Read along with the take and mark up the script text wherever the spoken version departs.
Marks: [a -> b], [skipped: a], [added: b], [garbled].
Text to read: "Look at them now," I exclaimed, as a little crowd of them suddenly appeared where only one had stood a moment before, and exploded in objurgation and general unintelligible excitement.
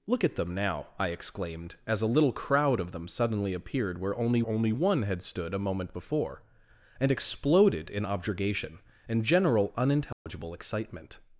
"Look at them now," I exclaimed, as a little crowd of them suddenly appeared where only [added: only] one had stood a moment before, and exploded in objurgation and general unintelligible excitement.